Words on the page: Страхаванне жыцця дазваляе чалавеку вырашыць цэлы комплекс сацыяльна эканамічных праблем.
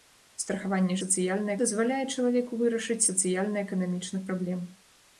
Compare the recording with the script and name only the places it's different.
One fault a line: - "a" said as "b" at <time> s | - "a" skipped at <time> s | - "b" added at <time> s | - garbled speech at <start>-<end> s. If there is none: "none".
- "жыцця" said as "сацыяльна" at 1.0 s
- "цэлы комплекс" skipped at 3.0 s